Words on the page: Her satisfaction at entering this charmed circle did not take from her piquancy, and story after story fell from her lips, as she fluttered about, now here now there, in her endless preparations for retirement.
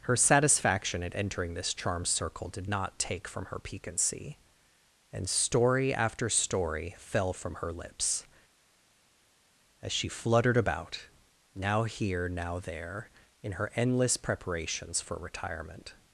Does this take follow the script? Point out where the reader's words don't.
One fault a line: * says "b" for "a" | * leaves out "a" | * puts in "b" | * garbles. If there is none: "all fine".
all fine